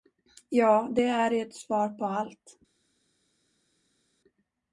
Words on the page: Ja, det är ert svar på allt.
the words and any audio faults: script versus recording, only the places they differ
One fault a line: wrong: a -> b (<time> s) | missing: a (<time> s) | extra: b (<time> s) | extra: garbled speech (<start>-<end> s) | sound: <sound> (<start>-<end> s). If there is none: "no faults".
no faults